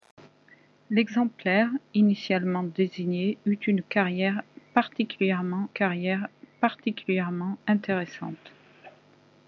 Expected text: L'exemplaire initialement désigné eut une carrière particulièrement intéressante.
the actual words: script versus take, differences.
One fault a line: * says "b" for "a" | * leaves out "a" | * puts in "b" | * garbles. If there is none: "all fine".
* puts in "carrière particulièrement"